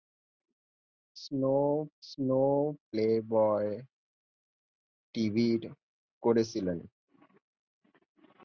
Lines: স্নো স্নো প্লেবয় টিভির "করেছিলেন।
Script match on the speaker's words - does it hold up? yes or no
yes